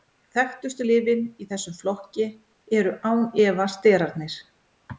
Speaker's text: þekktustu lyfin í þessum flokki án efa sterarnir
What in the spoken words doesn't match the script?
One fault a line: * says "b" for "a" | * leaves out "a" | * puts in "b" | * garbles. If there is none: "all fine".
* puts in "eru"